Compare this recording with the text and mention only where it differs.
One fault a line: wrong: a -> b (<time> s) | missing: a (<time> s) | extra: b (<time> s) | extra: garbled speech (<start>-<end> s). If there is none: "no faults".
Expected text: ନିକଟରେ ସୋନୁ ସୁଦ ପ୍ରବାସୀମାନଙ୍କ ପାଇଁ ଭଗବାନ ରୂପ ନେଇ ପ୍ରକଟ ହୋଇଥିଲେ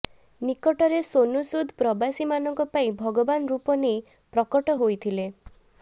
no faults